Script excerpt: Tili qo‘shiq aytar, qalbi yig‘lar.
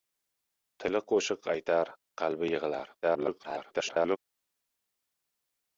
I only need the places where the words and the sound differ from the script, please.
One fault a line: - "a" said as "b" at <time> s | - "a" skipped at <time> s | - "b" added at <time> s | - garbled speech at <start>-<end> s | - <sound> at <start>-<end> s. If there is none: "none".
- garbled speech at 3.0-4.2 s